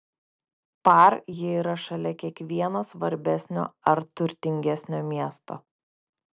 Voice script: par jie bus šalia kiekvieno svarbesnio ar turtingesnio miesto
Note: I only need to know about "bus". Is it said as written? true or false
false